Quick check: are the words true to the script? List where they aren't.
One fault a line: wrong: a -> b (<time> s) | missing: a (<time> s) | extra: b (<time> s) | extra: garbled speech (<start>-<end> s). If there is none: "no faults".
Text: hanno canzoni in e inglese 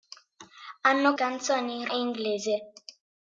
no faults